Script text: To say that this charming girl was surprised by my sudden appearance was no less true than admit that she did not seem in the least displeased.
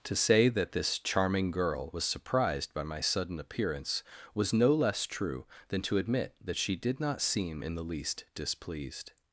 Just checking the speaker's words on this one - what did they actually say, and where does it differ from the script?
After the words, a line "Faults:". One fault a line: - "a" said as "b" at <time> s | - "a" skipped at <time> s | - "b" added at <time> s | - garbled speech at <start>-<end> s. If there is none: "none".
To say that this charming girl was surprised by my sudden appearance was no less true than to admit that she did not seem in the least displeased.
Faults:
- "to" added at 5.8 s